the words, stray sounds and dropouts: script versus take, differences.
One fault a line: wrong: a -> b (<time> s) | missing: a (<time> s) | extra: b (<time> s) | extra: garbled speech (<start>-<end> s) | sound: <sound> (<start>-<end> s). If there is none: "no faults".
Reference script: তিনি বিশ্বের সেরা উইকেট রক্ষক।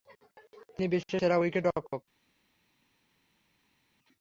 no faults